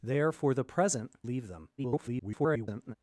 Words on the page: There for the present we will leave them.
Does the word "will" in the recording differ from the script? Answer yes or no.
yes